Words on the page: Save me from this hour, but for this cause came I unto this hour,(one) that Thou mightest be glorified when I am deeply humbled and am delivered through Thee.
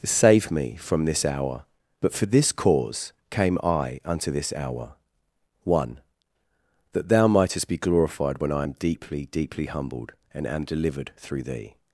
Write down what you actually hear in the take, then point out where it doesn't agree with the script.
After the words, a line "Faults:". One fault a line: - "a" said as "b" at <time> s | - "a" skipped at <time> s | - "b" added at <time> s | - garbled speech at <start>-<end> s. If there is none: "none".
Save me from this hour, but for this cause came I unto this hour,(one) that Thou mightest be glorified when I am deeply deeply humbled and am delivered through Thee.
Faults:
- "deeply" added at 9.3 s